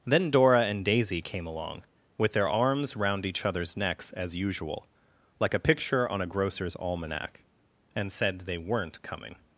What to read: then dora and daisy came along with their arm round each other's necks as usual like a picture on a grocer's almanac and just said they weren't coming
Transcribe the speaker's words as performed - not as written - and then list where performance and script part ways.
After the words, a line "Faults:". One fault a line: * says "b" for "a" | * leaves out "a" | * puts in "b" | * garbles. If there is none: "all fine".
then dora and daisy came along with their arms round each other's necks as usual like a picture on a grocer's almanac and said they weren't coming
Faults:
* says "arms" for "arm"
* leaves out "just"